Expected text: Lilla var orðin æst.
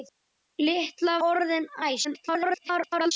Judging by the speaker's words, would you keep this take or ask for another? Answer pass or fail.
fail